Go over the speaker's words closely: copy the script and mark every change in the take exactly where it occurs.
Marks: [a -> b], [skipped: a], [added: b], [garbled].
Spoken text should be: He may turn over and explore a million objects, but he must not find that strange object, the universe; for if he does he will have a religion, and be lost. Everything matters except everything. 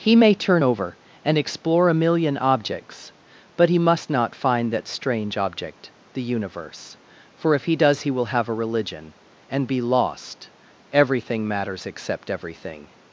He may turn over and explore a million objects, but he must not find that strange object, the universe; for if he does he will have a religion, and be lost. Everything matters except everything.